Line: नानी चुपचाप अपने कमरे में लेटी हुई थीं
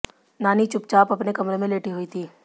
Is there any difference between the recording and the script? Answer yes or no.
no